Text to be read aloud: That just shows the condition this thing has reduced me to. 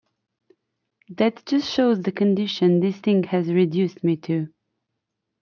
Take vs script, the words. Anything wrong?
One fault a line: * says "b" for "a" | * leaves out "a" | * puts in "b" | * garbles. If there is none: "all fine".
all fine